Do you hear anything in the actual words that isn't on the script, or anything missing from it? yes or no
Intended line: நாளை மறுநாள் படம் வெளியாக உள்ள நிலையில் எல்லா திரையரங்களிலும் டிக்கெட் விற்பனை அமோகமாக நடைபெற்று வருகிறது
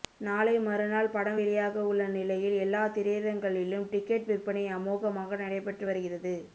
no